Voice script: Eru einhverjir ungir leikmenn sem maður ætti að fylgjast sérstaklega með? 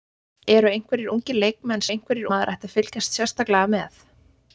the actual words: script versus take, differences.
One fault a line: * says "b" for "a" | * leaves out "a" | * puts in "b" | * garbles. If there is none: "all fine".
* says "einhverjir" for "sem"